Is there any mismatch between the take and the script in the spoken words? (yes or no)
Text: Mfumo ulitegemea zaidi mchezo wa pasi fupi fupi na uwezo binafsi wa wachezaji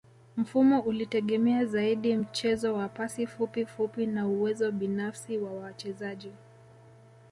no